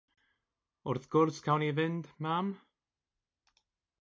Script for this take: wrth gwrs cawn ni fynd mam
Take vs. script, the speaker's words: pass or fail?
pass